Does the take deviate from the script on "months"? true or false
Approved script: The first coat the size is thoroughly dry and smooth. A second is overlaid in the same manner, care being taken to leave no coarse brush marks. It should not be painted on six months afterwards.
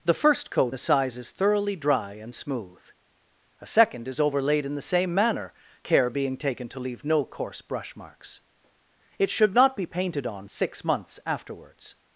false